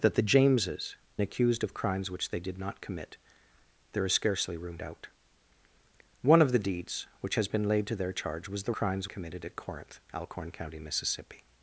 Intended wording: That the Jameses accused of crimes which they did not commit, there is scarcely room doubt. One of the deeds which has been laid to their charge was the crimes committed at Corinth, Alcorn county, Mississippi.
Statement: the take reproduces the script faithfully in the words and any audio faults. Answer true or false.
true